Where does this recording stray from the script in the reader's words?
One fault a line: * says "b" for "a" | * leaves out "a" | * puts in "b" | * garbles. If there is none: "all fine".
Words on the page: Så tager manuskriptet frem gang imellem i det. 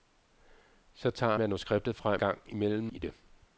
all fine